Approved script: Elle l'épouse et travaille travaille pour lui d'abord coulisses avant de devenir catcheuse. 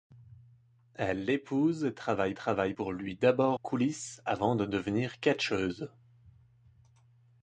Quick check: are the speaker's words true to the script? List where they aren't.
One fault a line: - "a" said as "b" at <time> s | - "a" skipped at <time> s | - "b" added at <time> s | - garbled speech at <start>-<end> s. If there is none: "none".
none